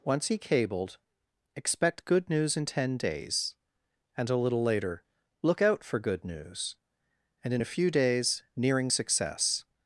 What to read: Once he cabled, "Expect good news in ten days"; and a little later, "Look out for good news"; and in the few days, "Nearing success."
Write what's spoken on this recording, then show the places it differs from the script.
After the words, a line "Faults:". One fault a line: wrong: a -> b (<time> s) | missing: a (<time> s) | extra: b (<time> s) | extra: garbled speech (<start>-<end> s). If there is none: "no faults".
Once he cabled, "Expect good news in ten days"; and a little later, "Look out for good news"; and in a few days, "Nearing success."
Faults:
wrong: the -> a (7.6 s)